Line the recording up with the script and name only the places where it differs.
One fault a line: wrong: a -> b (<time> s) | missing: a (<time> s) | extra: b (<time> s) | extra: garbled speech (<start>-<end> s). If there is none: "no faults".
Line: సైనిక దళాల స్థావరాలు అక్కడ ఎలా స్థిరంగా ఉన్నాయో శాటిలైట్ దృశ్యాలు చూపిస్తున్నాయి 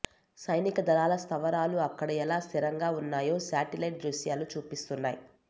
no faults